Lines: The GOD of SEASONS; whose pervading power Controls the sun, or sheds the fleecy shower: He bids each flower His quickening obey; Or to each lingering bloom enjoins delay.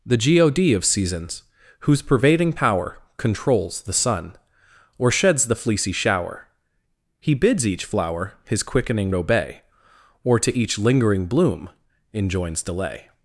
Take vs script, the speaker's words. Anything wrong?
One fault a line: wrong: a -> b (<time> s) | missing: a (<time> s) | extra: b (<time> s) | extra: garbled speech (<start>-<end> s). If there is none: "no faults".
no faults